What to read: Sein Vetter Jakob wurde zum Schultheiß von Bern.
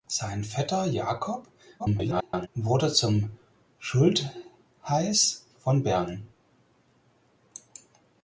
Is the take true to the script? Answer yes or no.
no